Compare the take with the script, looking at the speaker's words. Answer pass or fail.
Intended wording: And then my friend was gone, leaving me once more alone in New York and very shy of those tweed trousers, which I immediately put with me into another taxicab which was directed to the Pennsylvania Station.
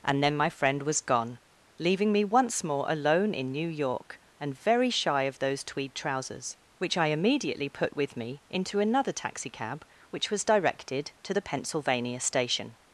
pass